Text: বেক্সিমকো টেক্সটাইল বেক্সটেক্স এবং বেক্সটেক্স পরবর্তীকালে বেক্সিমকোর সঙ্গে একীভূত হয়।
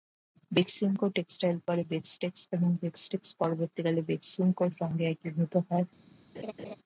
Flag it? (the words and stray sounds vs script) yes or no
yes